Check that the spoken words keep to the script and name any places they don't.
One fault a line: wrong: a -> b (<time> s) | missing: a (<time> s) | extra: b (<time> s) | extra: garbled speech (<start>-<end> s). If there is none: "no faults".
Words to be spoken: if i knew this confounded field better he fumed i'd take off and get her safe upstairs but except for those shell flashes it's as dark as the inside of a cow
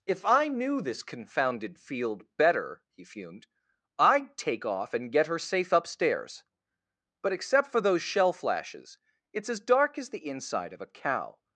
no faults